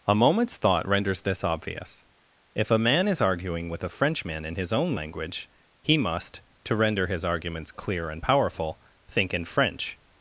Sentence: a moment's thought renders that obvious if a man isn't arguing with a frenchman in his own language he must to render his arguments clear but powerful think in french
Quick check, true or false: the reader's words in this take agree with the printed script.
false